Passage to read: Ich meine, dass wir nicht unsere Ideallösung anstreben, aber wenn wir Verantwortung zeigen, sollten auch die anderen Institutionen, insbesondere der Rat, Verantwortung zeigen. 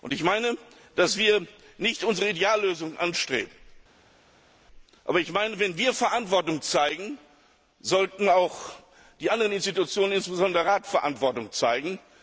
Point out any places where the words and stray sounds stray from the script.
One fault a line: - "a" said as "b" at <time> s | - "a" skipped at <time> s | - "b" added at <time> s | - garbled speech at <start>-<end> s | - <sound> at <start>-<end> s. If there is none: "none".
none